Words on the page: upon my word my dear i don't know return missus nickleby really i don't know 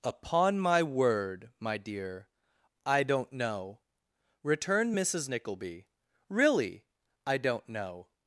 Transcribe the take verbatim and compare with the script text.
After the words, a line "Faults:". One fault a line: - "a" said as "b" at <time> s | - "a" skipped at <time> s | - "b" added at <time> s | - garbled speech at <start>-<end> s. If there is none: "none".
upon my word my dear i don't know returned missus nickleby really i don't know
Faults:
- "return" said as "returned" at 4.4 s